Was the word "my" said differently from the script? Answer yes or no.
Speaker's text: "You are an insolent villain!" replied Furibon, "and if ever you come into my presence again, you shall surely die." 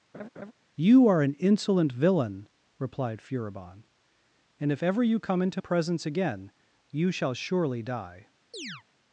yes